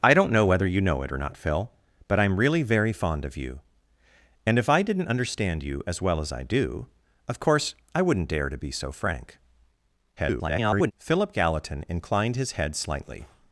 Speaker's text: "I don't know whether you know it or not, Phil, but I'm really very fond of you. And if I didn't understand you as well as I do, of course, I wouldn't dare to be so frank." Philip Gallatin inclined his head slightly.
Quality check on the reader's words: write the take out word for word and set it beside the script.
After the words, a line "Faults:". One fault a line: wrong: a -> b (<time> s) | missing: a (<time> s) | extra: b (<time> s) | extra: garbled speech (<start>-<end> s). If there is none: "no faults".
"I don't know whether you know it or not, Phil, but I'm really very fond of you. And if I didn't understand you as well as I do, of course, I wouldn't dare to be so frank." [garbled] Philip Gallatin inclined his head slightly.
Faults:
extra: garbled speech (10.2-10.9 s)